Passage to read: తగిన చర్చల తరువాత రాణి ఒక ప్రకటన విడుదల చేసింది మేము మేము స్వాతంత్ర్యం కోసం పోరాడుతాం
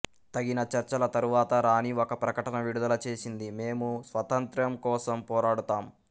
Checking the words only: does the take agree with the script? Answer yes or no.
no